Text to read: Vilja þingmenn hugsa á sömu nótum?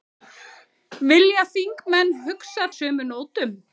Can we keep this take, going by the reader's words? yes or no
yes